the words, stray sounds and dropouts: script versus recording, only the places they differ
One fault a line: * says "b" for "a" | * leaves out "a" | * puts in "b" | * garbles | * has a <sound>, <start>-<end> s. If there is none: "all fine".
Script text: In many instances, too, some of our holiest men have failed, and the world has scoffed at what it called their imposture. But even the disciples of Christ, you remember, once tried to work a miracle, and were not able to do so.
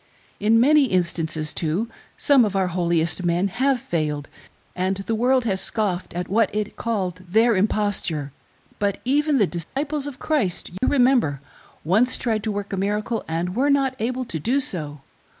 * has a dropout, 9.6-9.8 s
* has a dropout, 10.8-10.8 s